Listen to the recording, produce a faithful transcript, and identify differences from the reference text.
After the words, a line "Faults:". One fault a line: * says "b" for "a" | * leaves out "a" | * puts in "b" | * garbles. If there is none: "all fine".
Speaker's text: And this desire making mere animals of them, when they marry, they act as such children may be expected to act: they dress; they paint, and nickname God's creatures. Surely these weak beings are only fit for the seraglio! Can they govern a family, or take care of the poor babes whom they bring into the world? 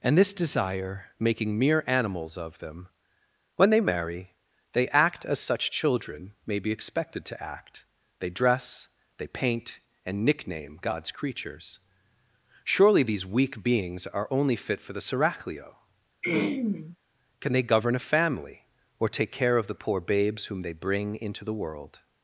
And this desire making mere animals of them, when they marry, they act as such children may be expected to act: they dress; they paint, and nickname God's creatures. Surely these weak beings are only fit for the seraglio! Can they govern a family, or take care of the poor babes whom they bring into the world?
Faults:
all fine